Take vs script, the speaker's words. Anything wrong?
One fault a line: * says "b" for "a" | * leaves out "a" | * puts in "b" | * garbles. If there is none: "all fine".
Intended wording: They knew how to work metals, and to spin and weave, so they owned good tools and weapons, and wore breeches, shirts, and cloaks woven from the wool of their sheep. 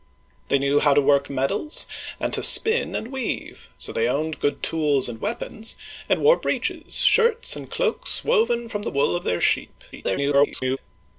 * garbles